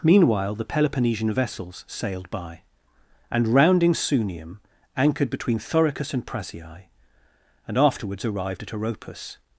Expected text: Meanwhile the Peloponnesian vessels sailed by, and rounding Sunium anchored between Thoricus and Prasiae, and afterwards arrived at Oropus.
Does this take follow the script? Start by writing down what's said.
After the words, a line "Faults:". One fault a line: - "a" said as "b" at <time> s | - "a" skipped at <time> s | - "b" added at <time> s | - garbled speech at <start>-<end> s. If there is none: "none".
Meanwhile the Peloponnesian vessels sailed by, and rounding Sunium anchored between Thoricus and Prasiae, and afterwards arrived at Oropus.
Faults:
none